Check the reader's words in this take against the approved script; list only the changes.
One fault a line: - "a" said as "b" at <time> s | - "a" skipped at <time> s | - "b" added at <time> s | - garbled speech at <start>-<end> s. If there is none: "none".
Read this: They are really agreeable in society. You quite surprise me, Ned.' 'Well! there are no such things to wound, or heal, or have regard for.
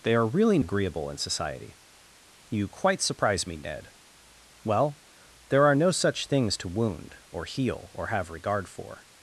none